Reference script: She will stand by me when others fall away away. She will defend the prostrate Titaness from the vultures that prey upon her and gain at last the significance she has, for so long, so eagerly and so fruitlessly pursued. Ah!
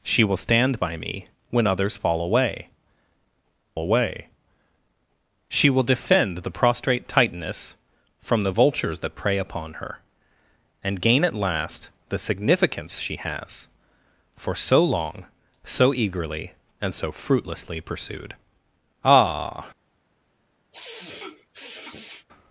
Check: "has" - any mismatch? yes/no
no